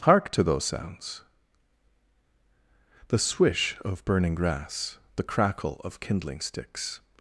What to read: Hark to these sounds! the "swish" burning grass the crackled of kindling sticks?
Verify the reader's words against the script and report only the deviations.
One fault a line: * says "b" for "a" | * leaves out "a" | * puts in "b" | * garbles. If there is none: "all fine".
* says "those" for "these"
* puts in "of"
* says "crackle" for "crackled"